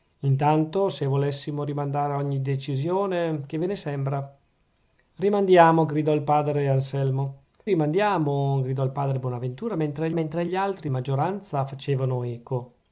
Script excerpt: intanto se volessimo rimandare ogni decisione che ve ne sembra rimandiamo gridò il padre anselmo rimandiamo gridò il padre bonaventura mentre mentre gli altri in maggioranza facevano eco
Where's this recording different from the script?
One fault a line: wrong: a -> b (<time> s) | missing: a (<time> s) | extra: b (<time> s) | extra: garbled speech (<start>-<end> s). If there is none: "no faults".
no faults